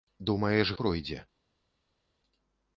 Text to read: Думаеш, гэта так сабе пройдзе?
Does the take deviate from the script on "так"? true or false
true